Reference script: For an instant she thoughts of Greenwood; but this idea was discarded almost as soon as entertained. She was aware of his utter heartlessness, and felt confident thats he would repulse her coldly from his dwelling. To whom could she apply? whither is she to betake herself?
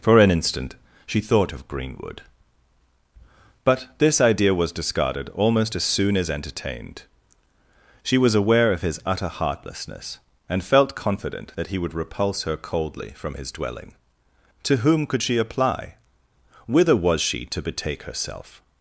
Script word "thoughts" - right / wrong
wrong